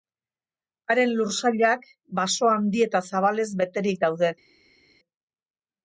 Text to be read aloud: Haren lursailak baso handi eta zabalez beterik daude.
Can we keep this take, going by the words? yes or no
yes